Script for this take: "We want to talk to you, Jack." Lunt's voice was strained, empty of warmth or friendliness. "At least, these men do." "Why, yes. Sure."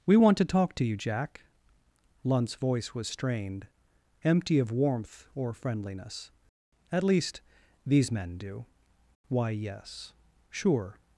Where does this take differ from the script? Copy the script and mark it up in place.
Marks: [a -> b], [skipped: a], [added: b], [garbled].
"We want to talk to you, Jack." Lunt's voice was strained, empty of warmth or friendliness. "At least, these men do." "Why, yes. Sure."